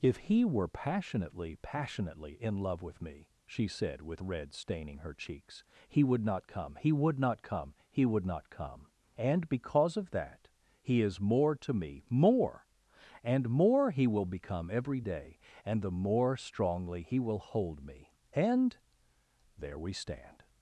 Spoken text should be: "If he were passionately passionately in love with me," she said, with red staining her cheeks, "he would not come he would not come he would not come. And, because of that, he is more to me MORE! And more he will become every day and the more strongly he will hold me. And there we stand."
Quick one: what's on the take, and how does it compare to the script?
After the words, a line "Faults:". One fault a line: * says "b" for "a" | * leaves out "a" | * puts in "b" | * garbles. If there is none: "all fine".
"If he were passionately passionately in love with me," she said, with red staining her cheeks, "he would not come he would not come he would not come. And, because of that, he is more to me MORE! And more he will become every day and the more strongly he will hold me. And there we stand."
Faults:
all fine